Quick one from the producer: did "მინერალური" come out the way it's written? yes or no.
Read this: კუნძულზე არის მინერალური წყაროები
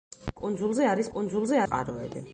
no